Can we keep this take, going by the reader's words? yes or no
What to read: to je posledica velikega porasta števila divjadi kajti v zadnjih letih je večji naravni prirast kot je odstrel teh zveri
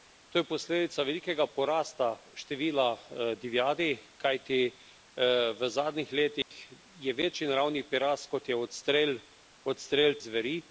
no